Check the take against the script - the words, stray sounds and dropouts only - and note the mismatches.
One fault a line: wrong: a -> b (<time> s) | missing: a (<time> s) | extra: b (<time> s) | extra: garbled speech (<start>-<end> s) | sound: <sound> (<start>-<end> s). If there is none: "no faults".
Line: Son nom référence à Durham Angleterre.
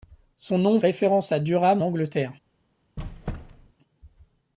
sound: squeak (3.0-3.7 s)